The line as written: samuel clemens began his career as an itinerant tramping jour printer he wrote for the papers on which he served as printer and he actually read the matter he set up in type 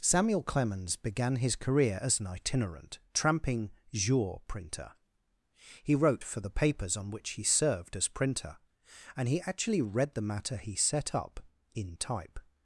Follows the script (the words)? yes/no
yes